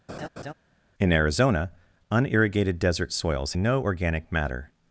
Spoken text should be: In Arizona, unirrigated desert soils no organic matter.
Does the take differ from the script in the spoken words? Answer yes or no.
no